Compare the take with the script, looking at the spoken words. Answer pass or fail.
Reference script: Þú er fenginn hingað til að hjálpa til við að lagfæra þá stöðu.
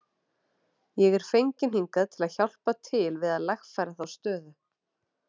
fail